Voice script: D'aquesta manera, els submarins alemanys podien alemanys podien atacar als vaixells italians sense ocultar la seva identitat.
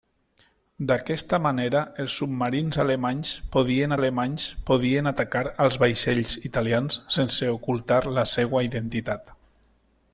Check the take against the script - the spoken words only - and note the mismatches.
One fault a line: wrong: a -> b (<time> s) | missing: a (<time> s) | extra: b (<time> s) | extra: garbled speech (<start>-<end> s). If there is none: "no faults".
no faults